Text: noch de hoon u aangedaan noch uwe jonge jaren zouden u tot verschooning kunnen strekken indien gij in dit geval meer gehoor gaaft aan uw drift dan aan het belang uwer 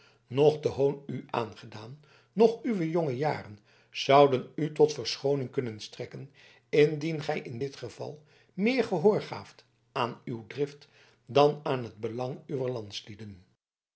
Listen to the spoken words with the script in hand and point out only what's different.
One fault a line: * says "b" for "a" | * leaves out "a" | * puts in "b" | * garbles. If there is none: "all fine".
all fine